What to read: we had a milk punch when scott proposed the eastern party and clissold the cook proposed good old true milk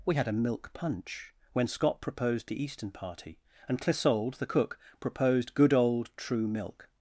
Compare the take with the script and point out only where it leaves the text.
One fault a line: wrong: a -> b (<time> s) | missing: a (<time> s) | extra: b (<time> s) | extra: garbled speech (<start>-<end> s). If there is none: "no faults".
no faults